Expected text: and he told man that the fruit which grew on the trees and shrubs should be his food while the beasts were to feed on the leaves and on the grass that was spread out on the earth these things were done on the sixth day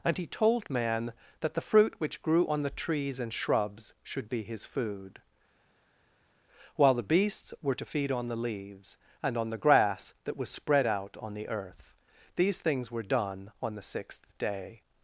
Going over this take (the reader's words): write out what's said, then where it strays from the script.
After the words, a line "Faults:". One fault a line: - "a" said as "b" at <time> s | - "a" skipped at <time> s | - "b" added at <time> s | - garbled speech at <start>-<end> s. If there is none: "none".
and he told man that the fruit which grew on the trees and shrubs should be his food while the beasts were to feed on the leaves and on the grass that was spread out on the earth these things were done on the sixth day
Faults:
none